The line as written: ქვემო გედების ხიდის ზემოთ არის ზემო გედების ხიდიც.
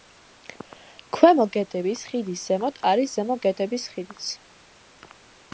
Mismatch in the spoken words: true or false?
false